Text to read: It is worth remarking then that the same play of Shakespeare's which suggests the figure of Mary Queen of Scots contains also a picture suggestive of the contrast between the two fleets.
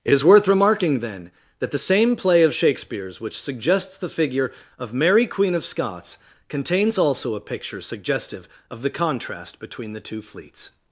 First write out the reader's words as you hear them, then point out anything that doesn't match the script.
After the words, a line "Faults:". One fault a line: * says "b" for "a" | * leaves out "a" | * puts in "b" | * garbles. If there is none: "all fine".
It is worth remarking then that the same play of Shakespeare's which suggests the figure of Mary Queen of Scots contains also a picture suggestive of the contrast between the two fleets.
Faults:
all fine